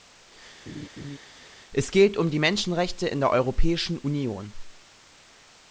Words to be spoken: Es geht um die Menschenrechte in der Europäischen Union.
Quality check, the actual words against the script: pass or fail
pass